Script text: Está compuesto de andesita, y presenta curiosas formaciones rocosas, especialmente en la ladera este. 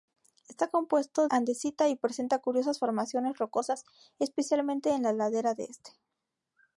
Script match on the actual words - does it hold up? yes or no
no